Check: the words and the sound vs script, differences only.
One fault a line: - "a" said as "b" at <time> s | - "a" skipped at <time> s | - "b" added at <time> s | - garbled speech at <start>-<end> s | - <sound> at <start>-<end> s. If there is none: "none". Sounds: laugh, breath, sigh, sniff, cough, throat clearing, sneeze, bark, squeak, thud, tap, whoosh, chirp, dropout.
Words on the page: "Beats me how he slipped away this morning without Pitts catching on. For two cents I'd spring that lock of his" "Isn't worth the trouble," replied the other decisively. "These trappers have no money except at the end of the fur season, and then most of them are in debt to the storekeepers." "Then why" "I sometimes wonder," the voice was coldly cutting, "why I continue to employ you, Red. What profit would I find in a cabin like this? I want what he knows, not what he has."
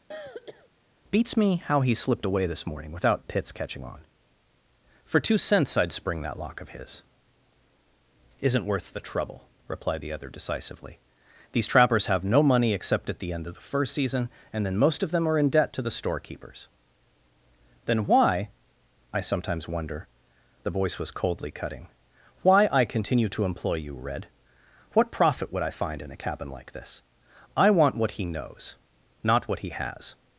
- throat clearing at 0.1-0.7 s
- "fur" said as "first" at 13.6 s